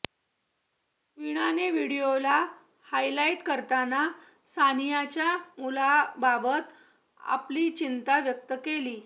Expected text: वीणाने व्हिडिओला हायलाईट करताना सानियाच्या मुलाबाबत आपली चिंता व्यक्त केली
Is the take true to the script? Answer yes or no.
yes